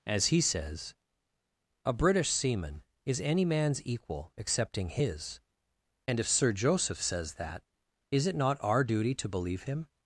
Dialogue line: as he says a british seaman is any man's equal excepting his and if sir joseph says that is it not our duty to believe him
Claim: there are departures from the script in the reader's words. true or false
false